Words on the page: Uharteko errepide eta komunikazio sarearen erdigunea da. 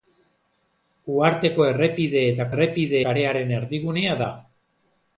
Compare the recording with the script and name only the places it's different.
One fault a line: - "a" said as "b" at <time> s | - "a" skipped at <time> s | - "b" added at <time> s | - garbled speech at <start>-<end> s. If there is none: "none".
- "komunikazio" said as "errepide" at 2.5 s